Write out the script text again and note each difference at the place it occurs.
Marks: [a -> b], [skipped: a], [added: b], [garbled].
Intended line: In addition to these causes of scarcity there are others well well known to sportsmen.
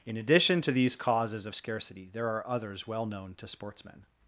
In addition to these causes of scarcity there are others well [skipped: well] known to sportsmen.